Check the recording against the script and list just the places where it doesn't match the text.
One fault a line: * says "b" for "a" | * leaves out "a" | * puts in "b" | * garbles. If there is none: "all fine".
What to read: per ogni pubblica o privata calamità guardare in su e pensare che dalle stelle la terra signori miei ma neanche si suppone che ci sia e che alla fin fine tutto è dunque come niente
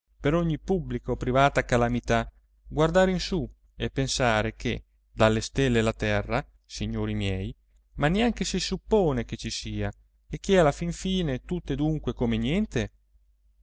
all fine